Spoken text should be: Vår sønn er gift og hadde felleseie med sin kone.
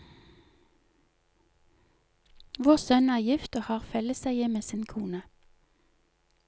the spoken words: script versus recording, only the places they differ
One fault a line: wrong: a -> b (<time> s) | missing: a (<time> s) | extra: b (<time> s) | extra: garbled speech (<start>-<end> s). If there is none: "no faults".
wrong: hadde -> har (3.7 s)